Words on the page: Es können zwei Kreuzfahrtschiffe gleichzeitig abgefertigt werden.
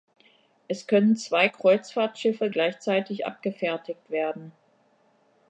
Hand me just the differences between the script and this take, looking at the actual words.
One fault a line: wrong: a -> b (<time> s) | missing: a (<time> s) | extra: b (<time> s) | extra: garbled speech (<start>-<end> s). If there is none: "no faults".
no faults